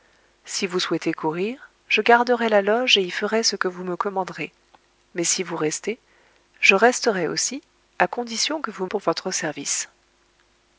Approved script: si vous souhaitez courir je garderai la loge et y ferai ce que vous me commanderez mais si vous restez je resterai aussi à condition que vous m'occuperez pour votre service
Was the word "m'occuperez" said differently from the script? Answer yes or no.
yes